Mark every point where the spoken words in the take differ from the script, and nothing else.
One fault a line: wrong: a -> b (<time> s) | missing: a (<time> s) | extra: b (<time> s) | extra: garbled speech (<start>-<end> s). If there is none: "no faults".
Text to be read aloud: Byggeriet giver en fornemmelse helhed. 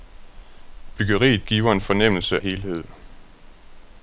no faults